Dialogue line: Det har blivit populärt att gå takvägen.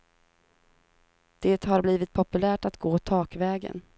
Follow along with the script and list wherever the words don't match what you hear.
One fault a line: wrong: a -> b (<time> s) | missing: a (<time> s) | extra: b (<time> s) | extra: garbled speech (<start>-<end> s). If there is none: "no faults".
no faults